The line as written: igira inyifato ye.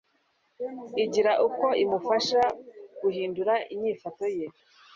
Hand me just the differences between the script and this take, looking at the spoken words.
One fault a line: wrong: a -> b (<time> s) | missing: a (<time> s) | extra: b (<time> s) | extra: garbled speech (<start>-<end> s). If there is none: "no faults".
extra: uko imufasha guhindura (1.5 s)